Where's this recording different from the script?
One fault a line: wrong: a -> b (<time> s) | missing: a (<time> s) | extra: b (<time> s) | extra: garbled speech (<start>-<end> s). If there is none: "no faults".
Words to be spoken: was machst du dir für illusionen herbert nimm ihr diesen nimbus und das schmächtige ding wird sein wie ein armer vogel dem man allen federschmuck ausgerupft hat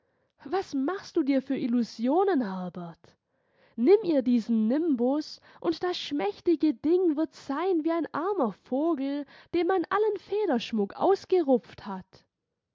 no faults